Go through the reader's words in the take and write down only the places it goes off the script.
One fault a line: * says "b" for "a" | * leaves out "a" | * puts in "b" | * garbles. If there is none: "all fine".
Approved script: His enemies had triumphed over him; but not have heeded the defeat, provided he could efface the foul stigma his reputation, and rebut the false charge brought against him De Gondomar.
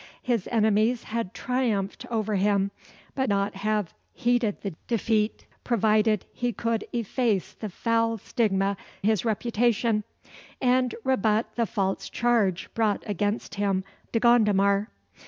all fine